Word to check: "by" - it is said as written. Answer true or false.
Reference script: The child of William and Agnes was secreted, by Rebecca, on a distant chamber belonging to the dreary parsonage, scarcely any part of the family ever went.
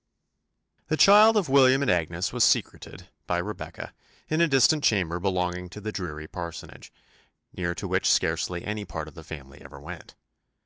true